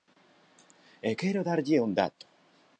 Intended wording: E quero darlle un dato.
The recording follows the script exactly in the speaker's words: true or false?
true